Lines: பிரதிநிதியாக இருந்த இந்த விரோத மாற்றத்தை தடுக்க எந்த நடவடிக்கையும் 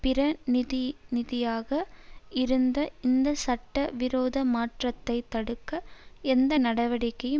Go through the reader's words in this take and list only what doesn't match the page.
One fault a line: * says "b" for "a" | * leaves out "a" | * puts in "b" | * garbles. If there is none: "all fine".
* puts in "சட்ட"